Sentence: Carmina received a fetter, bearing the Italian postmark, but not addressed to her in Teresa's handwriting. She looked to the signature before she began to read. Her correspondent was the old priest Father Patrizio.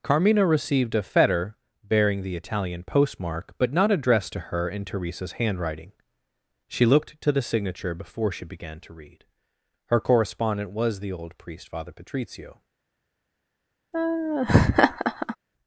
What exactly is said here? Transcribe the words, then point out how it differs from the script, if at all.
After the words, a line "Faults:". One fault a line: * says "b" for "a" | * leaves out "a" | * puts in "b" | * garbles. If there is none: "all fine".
Carmina received a fetter, bearing the Italian postmark, but not addressed to her in Teresa's handwriting. She looked to the signature before she began to read. Her correspondent was the old priest Father Patrizio.
Faults:
all fine